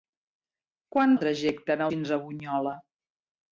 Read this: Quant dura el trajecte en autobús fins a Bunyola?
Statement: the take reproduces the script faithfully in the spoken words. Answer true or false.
false